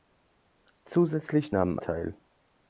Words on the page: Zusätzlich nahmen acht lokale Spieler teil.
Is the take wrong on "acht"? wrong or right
wrong